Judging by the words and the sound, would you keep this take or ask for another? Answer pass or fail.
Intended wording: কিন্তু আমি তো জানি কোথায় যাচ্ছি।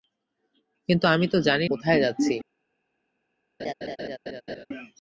fail